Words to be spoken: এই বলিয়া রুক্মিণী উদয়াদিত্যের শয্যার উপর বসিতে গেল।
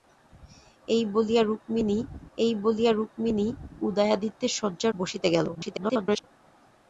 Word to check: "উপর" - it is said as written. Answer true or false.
false